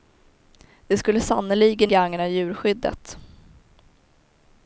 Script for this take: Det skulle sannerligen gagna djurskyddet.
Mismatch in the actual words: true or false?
false